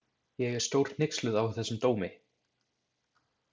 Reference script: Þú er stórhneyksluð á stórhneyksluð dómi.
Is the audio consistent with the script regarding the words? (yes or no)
no